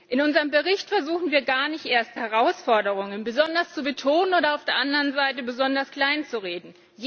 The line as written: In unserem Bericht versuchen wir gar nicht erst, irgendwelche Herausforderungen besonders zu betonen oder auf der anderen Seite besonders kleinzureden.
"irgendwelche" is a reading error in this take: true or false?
true